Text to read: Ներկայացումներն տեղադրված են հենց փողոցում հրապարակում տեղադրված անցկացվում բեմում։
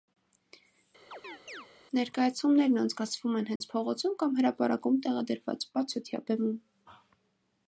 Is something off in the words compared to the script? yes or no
yes